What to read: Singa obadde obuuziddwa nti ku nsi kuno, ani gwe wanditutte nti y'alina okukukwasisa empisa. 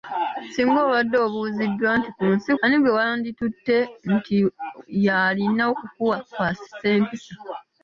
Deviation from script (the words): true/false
true